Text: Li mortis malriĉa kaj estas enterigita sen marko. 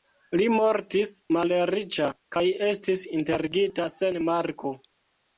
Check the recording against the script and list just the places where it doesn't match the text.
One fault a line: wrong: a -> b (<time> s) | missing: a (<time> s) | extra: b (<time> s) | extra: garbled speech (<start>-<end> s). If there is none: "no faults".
wrong: estas -> estis (2.7 s)